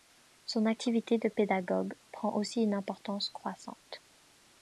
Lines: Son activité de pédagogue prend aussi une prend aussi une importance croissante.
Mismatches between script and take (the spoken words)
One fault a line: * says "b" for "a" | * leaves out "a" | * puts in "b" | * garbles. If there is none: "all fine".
* leaves out "prend aussi une"